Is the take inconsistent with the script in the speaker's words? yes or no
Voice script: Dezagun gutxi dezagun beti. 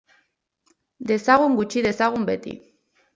no